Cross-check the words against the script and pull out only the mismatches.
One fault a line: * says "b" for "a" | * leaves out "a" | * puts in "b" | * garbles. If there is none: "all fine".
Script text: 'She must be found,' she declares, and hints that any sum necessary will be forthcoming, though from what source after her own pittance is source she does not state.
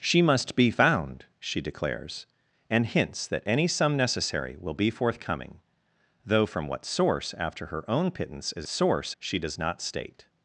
all fine